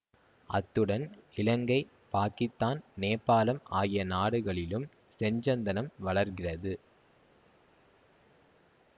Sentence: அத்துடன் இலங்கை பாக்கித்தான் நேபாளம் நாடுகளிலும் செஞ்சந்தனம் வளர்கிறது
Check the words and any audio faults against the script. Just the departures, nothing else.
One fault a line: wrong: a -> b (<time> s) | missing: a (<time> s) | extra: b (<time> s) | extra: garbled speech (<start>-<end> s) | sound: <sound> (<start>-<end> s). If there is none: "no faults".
extra: ஆகிய (3.7 s)